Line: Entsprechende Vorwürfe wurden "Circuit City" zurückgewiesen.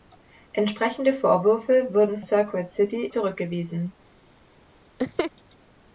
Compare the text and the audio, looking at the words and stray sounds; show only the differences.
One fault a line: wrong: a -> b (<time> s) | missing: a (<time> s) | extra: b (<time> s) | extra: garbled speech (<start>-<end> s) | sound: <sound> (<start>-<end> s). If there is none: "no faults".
sound: laugh (5.0-5.3 s)